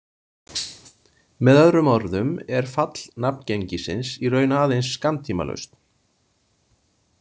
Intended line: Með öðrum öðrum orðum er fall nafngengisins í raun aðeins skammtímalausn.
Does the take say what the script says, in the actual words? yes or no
no